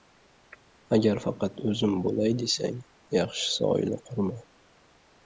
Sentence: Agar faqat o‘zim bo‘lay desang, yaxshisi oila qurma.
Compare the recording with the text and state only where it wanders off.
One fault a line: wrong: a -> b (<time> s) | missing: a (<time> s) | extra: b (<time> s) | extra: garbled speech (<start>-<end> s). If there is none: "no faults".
no faults